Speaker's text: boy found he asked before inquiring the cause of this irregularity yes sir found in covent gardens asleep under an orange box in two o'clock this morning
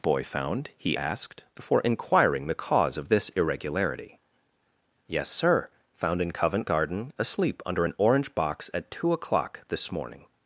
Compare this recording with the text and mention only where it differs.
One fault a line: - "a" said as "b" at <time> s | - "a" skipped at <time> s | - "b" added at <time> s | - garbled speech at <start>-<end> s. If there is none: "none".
- "gardens" said as "garden" at 6.6 s
- "in" said as "at" at 8.7 s